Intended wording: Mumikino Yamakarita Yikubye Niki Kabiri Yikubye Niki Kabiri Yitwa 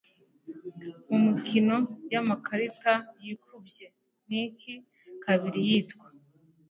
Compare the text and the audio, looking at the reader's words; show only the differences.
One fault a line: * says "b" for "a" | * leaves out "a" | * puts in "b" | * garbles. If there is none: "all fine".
* leaves out "Yikubye Niki Kabiri"